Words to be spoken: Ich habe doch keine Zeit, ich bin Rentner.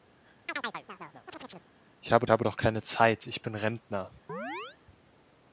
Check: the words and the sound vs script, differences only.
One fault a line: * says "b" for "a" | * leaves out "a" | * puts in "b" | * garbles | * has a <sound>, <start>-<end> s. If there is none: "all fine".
* has a chirp, 0.5-1.7 s
* puts in "habe"
* has a chirp, 4.3-4.8 s